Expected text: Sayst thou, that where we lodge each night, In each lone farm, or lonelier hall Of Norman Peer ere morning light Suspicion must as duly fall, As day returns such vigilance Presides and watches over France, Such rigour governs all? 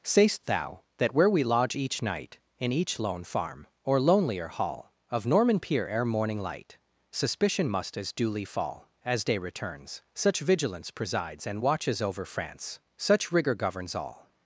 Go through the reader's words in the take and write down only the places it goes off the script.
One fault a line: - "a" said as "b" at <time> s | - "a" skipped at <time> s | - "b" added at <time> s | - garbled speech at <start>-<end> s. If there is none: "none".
none